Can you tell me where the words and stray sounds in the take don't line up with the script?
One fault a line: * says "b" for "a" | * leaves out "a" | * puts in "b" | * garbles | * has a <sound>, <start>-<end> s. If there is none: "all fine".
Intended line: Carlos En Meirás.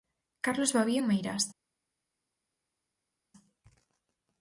* puts in "Babío"